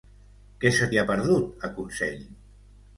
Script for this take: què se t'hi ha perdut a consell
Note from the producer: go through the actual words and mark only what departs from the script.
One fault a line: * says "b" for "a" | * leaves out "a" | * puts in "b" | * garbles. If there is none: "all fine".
all fine